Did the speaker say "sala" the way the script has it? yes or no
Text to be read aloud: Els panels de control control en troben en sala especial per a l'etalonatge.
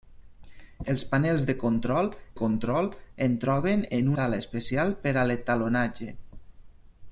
yes